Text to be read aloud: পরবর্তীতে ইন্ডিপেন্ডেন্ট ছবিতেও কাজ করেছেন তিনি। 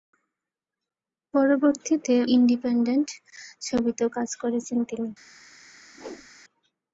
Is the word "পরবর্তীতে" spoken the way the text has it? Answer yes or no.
yes